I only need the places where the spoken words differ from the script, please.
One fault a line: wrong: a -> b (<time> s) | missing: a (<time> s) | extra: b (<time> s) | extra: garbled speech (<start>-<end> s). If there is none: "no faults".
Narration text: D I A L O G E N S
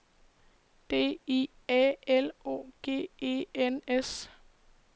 no faults